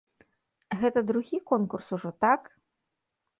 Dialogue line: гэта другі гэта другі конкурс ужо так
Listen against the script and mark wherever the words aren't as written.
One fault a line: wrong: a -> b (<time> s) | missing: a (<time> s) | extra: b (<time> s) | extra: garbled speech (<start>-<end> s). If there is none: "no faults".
missing: гэта другі (1.4 s)